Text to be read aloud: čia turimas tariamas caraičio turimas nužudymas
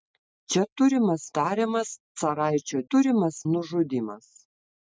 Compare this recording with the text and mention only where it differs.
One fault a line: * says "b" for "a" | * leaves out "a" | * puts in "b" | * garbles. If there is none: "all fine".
all fine